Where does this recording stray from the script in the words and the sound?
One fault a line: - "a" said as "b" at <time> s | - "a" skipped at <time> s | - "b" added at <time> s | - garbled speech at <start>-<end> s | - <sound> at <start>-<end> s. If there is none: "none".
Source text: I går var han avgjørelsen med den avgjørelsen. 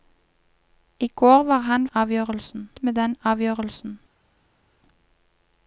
none